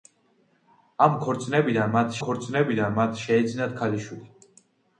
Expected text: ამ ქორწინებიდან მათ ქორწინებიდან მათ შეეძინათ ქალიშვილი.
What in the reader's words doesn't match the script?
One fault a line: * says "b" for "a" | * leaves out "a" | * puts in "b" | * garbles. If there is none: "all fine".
all fine